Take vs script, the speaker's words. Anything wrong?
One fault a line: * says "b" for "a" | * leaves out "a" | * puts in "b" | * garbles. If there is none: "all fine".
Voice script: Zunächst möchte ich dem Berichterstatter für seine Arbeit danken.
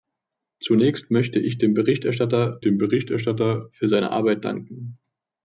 * puts in "dem Berichterstatter"